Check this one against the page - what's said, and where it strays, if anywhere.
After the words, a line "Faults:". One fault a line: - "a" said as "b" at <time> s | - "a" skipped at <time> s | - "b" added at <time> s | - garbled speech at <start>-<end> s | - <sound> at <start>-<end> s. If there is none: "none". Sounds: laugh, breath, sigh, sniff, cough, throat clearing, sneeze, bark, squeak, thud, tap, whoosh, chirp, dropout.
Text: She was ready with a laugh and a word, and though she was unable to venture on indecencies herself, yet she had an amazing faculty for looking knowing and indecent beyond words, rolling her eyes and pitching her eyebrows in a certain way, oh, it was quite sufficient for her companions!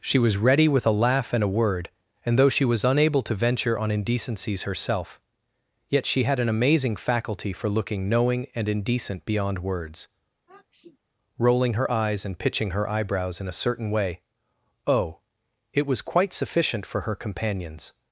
She was ready with a laugh and a word, and though she was unable to venture on indecencies herself, yet she had an amazing faculty for looking knowing and indecent beyond words, rolling her eyes and pitching her eyebrows in a certain way, oh, it was quite sufficient for her companions!
Faults:
- sniff at 10.5-11.0 s